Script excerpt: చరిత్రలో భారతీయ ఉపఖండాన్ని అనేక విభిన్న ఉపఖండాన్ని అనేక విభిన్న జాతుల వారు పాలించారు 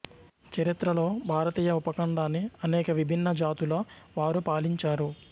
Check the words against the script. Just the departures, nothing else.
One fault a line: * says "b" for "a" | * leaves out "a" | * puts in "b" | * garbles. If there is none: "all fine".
* leaves out "ఉపఖండాన్ని అనేక విభిన్న"